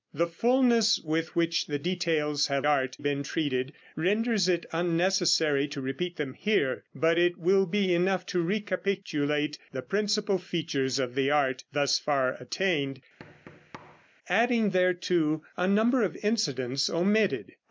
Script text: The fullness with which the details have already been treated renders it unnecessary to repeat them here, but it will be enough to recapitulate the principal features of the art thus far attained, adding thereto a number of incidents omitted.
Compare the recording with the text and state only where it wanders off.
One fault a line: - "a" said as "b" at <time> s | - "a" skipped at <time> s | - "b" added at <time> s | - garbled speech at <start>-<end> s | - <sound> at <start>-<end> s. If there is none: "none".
- "already" said as "art" at 2.6 s
- thud at 13.2-14.1 s